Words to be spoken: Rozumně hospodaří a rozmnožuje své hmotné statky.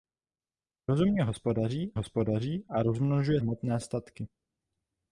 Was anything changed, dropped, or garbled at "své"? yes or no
yes